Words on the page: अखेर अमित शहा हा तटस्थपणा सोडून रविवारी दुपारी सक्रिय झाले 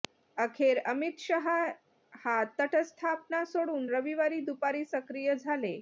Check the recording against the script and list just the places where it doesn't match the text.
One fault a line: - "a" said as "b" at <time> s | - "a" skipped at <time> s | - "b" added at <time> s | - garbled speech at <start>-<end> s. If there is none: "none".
none